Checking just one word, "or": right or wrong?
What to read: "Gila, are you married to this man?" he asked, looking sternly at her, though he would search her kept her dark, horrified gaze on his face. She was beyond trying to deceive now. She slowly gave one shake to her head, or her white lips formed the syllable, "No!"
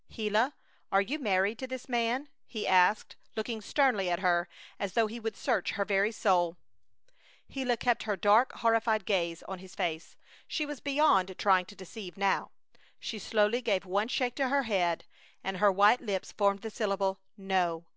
wrong